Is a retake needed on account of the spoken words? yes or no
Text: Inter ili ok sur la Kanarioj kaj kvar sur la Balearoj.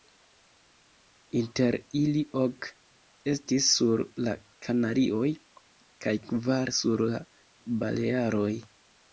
yes